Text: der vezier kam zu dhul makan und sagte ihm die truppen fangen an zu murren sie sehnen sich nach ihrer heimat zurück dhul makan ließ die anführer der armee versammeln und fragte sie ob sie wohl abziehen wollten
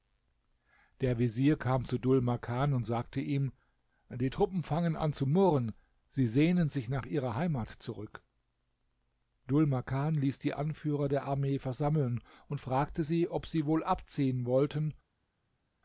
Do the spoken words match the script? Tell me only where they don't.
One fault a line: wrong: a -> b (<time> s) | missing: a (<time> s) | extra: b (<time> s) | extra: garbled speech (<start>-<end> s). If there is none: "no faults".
no faults